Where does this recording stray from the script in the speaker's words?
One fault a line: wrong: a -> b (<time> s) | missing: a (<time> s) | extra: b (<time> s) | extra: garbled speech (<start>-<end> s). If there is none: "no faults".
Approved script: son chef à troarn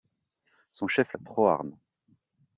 no faults